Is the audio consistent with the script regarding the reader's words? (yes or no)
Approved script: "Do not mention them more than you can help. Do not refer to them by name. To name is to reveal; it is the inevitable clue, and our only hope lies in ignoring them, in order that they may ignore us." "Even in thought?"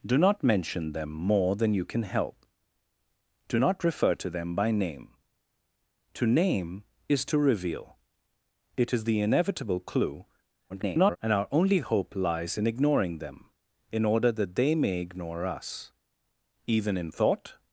no